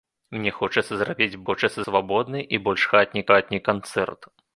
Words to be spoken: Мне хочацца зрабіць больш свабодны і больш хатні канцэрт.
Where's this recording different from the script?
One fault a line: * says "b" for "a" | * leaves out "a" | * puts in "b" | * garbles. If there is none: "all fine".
* says "хочацца" for "больш"
* puts in "хатні"